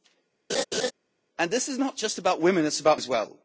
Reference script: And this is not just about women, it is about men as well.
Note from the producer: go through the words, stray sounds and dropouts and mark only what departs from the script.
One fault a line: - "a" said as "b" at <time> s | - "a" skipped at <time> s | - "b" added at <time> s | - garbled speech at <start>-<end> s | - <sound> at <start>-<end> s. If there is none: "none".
- laugh at 0.5-0.9 s
- "men" skipped at 3.0 s